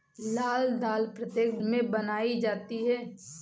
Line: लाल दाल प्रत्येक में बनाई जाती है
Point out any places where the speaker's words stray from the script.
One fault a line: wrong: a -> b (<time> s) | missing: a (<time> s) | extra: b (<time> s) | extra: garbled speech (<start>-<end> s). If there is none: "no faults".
no faults